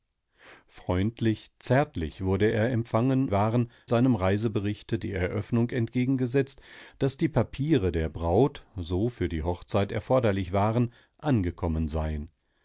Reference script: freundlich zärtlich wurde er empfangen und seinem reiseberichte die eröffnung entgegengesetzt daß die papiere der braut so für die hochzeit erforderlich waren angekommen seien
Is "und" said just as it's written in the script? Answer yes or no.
no